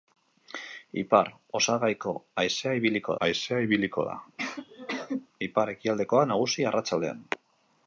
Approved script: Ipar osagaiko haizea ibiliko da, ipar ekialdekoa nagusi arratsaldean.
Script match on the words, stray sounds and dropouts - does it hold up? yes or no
no